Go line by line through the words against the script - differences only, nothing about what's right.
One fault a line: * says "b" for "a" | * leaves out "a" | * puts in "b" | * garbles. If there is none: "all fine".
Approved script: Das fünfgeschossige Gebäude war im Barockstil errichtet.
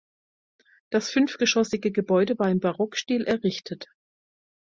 all fine